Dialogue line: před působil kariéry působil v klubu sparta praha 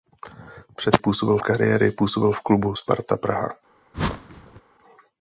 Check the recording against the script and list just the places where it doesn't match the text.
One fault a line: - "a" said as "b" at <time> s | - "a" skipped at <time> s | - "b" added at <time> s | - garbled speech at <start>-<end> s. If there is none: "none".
none